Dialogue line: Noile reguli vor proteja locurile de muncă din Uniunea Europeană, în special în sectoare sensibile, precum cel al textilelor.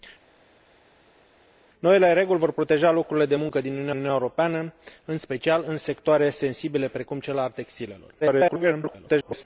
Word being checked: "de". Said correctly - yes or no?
yes